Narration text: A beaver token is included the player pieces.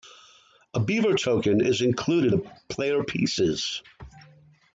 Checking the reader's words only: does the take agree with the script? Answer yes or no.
yes